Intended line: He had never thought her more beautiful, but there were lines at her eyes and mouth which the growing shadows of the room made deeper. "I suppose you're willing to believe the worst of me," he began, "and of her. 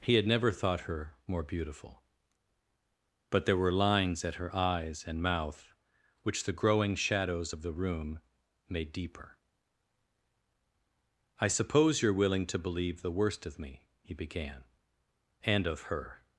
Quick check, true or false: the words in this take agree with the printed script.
true